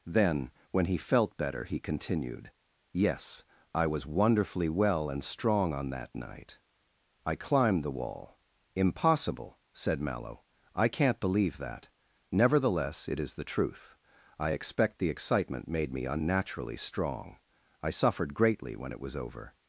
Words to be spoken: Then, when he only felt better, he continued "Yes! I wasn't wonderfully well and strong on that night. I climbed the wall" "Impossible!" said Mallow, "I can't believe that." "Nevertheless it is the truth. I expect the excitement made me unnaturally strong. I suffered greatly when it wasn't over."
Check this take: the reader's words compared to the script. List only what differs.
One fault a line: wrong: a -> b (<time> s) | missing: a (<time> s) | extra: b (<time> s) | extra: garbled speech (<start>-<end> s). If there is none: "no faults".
missing: only (1.0 s)
wrong: wasn't -> was (3.9 s)
wrong: wasn't -> was (19.0 s)